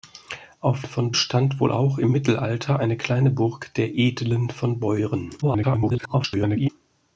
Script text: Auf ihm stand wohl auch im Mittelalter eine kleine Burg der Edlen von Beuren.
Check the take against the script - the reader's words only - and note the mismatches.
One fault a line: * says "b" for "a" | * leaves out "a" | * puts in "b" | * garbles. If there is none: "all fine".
* says "von" for "ihm"
* garbles